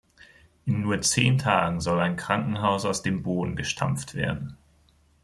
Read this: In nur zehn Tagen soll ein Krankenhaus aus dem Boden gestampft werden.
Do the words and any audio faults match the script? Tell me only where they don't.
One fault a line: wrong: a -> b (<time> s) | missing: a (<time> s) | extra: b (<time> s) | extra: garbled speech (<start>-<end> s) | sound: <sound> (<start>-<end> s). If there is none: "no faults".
no faults